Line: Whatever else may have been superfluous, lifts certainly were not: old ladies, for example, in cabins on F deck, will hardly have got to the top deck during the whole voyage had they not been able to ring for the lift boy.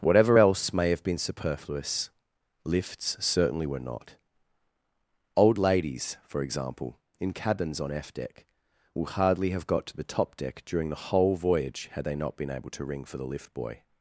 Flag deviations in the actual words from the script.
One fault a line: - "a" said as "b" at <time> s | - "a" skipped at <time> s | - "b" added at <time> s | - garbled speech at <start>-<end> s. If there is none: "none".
none